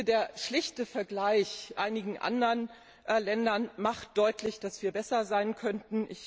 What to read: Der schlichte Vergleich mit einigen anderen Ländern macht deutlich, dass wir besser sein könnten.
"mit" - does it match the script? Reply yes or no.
no